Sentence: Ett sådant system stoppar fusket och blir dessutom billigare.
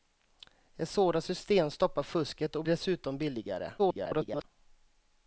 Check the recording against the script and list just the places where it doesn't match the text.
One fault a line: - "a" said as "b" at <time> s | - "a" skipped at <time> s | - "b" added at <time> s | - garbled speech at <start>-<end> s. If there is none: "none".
- "blir" skipped at 2.6 s
- garbled speech at 3.8-4.4 s